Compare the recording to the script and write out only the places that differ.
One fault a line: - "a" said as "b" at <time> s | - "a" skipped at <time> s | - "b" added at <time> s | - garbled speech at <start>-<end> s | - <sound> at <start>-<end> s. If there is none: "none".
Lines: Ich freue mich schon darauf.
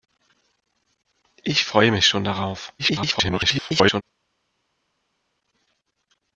- garbled speech at 2.8-4.0 s